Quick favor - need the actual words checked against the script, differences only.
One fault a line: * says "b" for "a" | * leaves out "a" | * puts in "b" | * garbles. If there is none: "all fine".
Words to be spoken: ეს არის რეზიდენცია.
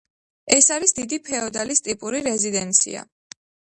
* puts in "დიდი ფეოდალის ტიპური"